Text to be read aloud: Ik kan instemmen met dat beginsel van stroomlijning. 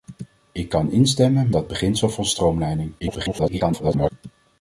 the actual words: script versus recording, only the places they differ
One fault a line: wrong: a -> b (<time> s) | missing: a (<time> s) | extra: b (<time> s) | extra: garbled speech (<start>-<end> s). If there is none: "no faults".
missing: met (1.5 s)
extra: garbled speech (3.0-4.1 s)